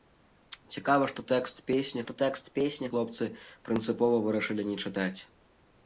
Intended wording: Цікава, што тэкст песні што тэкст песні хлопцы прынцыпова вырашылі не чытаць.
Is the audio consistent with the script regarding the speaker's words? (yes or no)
yes